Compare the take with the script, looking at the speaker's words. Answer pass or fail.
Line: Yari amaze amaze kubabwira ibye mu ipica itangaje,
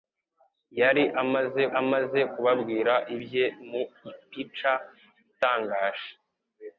pass